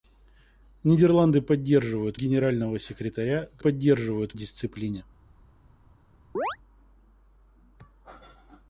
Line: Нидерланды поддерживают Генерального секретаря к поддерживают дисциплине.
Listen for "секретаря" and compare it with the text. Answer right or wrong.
right